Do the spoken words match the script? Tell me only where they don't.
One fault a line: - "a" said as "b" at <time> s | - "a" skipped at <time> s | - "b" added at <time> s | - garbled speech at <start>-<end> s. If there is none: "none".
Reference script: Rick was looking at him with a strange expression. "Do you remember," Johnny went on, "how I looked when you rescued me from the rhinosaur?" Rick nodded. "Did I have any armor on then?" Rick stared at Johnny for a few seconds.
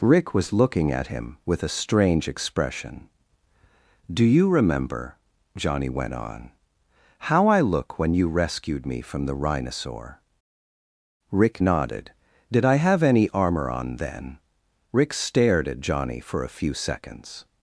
- "looked" said as "look" at 7.6 s